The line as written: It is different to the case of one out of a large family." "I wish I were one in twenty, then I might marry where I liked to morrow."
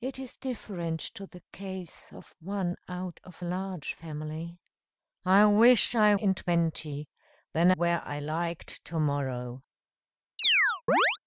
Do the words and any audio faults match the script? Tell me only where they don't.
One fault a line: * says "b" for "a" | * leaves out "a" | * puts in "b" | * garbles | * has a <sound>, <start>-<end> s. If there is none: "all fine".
* leaves out "were one"
* leaves out "I might marry"
* has a chirp, 10.4-11.2 s